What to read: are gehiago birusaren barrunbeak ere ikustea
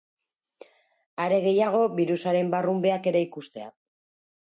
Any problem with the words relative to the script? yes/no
no